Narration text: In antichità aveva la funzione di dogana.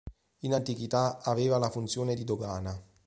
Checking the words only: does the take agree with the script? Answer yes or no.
yes